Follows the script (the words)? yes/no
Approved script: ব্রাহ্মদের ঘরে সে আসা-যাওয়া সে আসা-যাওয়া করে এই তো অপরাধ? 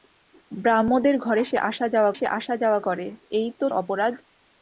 yes